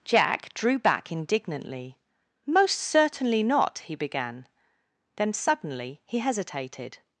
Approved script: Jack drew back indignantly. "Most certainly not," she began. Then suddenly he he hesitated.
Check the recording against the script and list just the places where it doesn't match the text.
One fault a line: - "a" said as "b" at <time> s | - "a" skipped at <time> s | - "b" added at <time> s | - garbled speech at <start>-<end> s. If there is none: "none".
- "she" said as "he" at 3.8 s
- "he" skipped at 6.2 s